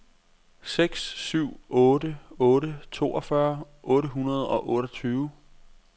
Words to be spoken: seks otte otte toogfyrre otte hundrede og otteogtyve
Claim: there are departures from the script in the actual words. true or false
true